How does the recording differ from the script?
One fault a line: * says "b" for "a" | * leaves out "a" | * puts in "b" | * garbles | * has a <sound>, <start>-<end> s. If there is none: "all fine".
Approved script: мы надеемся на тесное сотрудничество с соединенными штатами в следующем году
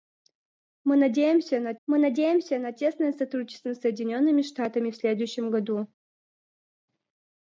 * puts in "мы надеемся на"